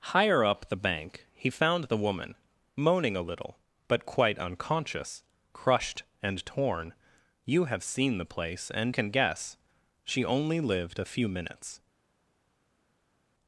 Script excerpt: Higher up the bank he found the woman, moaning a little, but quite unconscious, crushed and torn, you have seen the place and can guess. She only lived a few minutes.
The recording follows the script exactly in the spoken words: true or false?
true